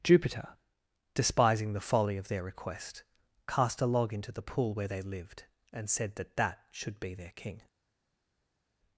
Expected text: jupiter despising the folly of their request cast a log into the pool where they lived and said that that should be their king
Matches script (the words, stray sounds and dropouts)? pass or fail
pass